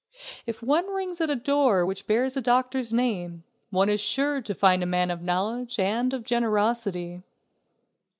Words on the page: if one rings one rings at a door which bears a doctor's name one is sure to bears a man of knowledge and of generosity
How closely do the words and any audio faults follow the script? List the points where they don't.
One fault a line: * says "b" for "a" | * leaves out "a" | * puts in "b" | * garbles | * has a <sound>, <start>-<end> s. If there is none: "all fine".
* leaves out "one rings"
* says "find" for "bears"